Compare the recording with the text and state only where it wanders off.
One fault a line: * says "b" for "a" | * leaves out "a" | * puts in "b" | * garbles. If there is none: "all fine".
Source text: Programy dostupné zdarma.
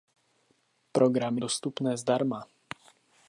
all fine